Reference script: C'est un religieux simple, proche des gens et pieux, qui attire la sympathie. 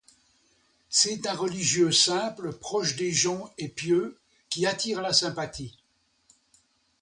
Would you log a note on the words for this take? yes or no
no